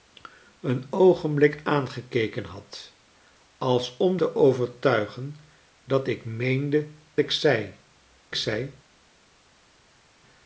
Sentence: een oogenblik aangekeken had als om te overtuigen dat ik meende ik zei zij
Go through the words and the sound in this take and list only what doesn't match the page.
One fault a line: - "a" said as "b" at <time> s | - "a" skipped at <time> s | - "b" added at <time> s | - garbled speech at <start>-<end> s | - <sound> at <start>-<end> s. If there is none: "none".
none